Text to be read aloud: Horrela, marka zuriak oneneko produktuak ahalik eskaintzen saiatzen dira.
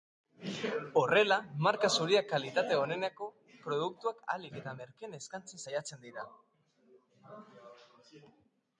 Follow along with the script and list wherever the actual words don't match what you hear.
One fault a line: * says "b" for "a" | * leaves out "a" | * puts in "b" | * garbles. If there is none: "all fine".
* puts in "kalitate"
* puts in "eta merkeen"